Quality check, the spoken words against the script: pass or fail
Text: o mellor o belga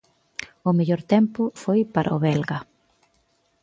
fail